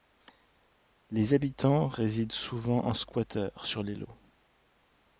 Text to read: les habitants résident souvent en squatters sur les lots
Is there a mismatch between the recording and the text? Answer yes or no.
no